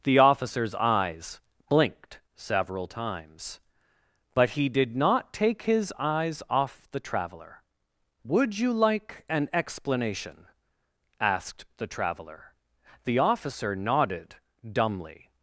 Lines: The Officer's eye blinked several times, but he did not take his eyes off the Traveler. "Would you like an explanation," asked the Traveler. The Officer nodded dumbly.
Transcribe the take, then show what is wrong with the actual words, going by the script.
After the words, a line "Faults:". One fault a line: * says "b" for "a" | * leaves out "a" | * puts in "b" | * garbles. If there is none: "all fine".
The Officer's eyes blinked several times, but he did not take his eyes off the Traveler. "Would you like an explanation," asked the Traveler. The Officer nodded dumbly.
Faults:
* says "eyes" for "eye"